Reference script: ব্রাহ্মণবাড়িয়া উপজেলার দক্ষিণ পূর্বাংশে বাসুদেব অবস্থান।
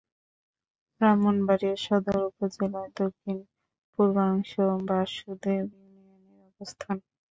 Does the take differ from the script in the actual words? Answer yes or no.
yes